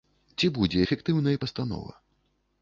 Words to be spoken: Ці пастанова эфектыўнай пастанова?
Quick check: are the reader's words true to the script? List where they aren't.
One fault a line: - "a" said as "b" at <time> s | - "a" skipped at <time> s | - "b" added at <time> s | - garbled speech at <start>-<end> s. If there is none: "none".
- "пастанова" said as "будзе" at 0.6 s